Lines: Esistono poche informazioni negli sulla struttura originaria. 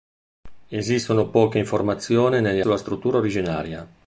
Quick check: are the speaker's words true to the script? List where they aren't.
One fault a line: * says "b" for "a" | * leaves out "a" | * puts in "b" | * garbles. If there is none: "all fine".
all fine